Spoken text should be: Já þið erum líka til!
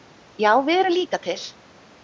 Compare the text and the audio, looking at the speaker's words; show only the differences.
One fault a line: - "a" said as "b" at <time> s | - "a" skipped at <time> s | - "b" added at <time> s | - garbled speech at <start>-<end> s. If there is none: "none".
- "þið" said as "við" at 0.7 s